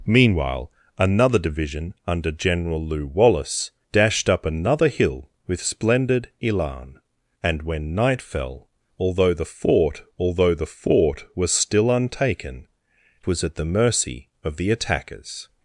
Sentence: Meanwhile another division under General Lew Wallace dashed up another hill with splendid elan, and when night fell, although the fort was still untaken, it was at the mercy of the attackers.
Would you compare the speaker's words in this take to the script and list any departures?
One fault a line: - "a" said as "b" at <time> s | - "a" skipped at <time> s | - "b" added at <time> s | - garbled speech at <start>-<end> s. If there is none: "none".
- "although the fort" added at 10.2 s
- "it" skipped at 12.7 s